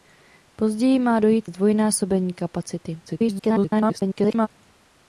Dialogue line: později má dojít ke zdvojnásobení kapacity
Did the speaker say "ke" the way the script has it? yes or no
no